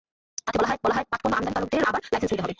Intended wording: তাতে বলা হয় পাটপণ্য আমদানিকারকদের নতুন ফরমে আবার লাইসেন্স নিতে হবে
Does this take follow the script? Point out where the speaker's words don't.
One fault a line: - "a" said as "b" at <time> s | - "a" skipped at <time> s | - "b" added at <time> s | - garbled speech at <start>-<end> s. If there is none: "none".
- "বলা হয়" added at 0.8 s
- "নতুন ফরমে" skipped at 1.8 s